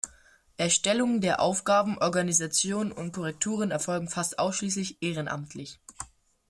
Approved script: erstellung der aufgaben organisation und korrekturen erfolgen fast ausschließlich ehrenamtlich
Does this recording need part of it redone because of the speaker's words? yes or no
no